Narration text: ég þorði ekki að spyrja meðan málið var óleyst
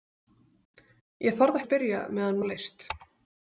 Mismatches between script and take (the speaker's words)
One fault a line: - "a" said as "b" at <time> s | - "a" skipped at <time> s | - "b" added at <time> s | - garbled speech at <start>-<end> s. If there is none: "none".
- "ekki" skipped at 1.6 s
- "málið var" skipped at 2.4 s